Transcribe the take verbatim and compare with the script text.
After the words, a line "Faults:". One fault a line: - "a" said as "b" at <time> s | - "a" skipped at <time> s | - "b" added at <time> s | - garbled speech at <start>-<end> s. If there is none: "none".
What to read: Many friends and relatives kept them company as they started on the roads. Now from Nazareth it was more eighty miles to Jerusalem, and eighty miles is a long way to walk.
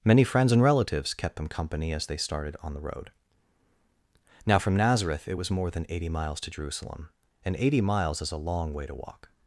Many friends and relatives kept them company as they started on the road. Now from Nazareth it was more than eighty miles to Jerusalem, and eighty miles is a long way to walk.
Faults:
- "roads" said as "road" at 2.8 s
- "than" added at 5.7 s